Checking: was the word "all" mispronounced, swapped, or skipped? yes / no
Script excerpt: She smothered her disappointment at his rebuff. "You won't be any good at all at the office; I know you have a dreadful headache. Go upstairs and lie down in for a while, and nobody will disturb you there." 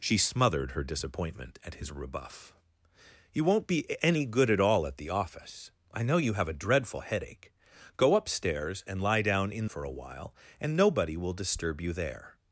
no